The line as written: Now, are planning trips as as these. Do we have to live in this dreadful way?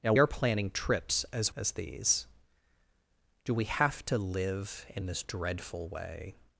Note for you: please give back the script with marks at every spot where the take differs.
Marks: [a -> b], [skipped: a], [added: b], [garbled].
Now, are planning trips as as these. Do we have to live in this dreadful way?